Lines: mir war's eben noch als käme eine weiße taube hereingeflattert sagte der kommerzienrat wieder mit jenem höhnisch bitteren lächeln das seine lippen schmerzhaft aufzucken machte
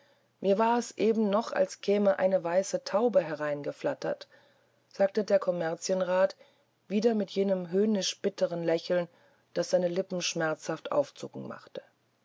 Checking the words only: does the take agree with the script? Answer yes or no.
yes